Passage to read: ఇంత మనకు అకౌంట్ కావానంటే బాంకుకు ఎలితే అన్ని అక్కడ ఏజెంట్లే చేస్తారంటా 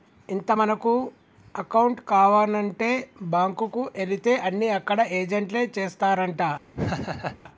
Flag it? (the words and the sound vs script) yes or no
yes